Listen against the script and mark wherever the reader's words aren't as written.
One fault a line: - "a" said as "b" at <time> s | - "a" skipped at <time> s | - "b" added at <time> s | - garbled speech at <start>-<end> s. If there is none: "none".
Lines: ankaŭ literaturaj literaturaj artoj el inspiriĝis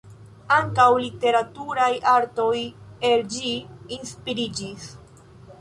- "literaturaj" skipped at 1.9 s
- "ĝi" added at 3.4 s